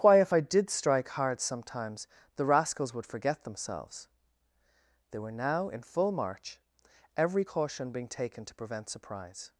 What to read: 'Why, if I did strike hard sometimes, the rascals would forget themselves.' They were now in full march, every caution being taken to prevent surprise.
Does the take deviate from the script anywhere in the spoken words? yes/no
no